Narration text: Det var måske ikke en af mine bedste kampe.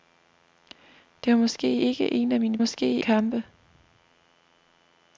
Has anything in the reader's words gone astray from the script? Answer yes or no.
yes